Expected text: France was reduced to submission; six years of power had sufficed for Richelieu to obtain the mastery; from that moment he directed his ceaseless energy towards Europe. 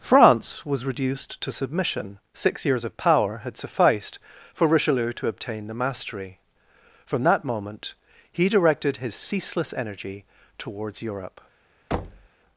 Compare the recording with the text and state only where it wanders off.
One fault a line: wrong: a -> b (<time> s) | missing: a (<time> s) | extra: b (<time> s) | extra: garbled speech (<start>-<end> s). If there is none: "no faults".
no faults